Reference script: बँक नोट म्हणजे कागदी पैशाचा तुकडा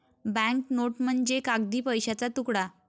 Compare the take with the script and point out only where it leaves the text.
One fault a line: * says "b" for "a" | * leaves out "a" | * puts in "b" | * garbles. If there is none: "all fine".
all fine